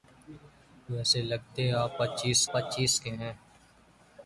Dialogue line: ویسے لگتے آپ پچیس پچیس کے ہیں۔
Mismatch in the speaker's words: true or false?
false